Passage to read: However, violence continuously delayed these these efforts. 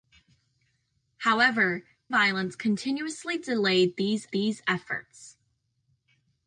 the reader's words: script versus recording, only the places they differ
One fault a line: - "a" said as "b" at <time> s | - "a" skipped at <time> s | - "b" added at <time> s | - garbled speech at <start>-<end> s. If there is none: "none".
none